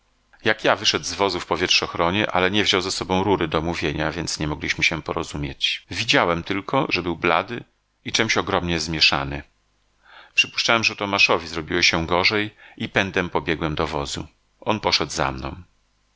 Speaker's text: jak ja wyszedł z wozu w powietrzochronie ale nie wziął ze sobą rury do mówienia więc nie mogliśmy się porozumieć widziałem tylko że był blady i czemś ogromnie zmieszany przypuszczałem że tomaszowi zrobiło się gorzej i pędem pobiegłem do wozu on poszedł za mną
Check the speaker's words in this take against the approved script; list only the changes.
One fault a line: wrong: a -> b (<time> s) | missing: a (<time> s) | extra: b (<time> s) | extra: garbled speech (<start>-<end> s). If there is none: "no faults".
no faults